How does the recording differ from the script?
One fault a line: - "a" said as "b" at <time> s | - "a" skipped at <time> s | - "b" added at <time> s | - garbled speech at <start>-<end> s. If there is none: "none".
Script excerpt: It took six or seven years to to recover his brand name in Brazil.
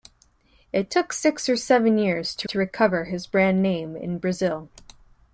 none